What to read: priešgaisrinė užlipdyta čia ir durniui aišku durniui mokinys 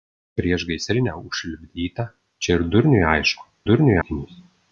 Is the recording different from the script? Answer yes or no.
no